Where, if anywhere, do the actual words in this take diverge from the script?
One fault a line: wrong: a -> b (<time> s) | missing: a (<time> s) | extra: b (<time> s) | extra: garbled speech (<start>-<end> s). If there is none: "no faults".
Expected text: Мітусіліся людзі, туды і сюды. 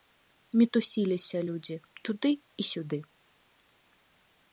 no faults